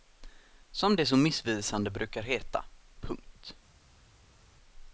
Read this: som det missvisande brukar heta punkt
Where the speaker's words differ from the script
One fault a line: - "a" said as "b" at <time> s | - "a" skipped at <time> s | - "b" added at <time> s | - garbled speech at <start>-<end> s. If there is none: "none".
- "så" added at 1.1 s